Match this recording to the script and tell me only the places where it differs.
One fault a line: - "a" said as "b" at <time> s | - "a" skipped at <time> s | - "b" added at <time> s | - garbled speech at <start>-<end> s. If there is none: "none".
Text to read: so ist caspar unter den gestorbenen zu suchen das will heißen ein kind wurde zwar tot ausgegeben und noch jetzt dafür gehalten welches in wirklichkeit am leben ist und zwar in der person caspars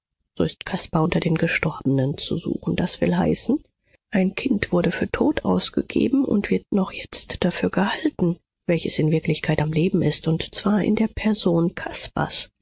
- "zwar" said as "für" at 4.9 s
- "wird" added at 6.5 s